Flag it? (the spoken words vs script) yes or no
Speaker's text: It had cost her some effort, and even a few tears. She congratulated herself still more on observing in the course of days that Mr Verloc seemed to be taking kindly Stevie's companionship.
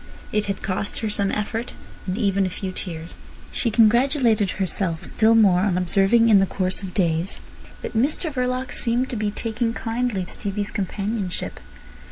no